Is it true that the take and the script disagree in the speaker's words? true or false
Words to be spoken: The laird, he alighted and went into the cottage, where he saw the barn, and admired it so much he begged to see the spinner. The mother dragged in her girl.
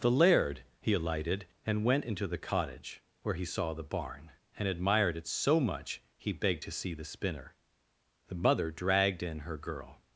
false